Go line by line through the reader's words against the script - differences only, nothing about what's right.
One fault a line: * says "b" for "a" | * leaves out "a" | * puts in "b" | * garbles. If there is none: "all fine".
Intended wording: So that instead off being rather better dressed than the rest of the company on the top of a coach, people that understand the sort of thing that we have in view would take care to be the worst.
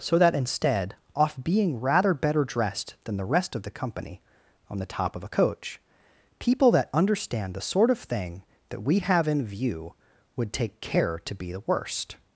all fine